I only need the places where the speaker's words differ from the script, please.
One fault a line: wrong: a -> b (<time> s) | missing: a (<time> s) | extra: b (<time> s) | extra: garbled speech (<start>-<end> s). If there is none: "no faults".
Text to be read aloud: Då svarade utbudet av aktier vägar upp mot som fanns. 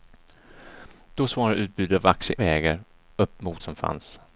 no faults